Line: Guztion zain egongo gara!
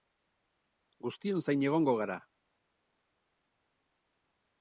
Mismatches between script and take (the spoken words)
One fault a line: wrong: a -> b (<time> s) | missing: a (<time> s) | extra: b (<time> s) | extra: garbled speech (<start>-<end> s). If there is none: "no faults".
no faults